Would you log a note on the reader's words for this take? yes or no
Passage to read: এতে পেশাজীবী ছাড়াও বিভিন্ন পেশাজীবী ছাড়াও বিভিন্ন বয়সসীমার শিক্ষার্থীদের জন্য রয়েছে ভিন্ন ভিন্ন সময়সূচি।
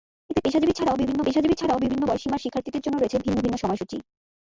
no